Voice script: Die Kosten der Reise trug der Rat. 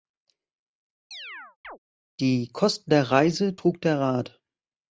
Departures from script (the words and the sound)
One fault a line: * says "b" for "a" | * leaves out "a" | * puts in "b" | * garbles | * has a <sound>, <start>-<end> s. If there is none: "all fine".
* has a chirp, 1.1-1.8 s